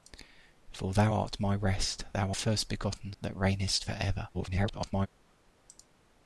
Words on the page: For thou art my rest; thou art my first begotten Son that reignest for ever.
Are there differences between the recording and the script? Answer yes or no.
yes